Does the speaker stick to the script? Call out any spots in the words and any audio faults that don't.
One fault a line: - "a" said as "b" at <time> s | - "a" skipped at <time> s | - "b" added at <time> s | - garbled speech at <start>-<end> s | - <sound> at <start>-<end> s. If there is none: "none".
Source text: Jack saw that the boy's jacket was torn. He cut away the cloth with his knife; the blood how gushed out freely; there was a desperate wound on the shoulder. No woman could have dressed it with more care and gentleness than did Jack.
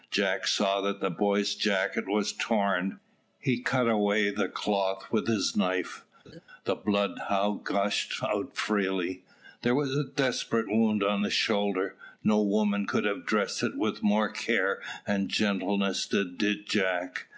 - laugh at 6.2-6.4 s